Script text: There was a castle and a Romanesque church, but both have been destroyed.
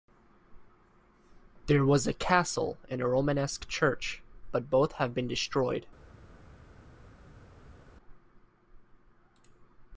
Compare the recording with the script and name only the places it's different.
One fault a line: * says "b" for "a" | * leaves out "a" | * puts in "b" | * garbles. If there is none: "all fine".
all fine